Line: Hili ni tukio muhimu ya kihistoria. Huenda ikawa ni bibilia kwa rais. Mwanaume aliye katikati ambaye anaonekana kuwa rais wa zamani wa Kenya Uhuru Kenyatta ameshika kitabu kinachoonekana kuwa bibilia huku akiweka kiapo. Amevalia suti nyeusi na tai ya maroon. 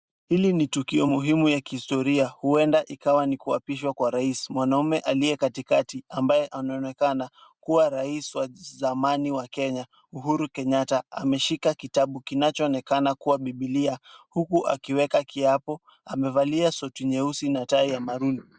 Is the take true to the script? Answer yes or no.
no